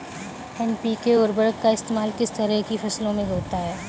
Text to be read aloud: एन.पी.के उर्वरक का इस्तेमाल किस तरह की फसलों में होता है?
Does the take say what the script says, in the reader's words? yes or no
yes